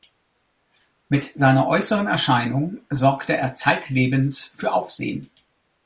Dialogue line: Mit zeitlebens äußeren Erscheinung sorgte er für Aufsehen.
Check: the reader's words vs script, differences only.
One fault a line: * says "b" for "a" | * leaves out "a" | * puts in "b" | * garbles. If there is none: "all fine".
* says "seiner" for "zeitlebens"
* puts in "zeitlebens"